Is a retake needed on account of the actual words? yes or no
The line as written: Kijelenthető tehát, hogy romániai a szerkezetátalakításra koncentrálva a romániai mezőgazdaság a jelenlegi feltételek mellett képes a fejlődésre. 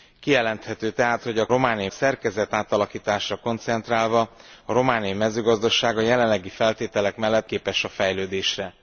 no